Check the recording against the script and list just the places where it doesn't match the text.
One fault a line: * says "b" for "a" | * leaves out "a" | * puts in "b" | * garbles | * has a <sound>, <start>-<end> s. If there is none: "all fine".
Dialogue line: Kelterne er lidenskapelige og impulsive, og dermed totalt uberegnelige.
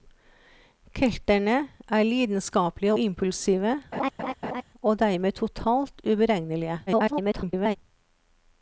* leaves out "og"
* has a laugh, 3.9-4.6 s
* garbles